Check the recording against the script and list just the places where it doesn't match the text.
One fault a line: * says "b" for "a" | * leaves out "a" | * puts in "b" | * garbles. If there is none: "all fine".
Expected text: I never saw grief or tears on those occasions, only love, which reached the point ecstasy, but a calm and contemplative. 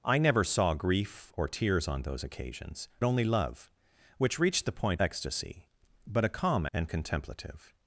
all fine